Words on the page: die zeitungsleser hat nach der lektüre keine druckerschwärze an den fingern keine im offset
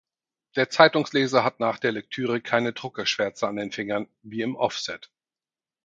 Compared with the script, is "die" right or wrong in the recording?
wrong